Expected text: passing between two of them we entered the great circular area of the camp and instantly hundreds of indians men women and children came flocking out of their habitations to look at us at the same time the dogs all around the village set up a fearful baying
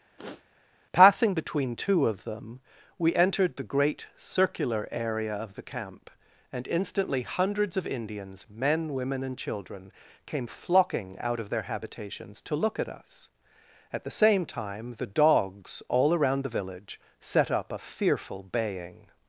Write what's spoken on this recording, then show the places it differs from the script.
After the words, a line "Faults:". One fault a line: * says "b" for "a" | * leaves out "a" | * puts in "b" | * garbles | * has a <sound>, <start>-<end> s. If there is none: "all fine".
passing between two of them we entered the great circular area of the camp and instantly hundreds of indians men women and children came flocking out of their habitations to look at us at the same time the dogs all around the village set up a fearful baying
Faults:
* has a sniff, 0.2-0.5 s